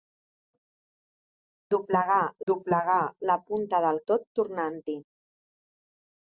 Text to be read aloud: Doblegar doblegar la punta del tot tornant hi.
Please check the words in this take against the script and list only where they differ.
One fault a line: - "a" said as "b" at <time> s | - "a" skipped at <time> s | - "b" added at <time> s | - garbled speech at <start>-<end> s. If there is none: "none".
none